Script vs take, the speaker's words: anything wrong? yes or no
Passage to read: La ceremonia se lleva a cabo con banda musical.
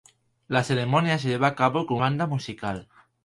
no